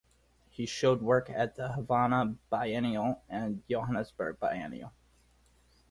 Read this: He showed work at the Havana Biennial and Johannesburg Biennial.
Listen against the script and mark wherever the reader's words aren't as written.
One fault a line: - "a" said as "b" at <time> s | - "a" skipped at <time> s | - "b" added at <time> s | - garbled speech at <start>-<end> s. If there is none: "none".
none